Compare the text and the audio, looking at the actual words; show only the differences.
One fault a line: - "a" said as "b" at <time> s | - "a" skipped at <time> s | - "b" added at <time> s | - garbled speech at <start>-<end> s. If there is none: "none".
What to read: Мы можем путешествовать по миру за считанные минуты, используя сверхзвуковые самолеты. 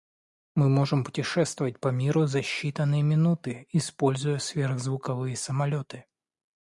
none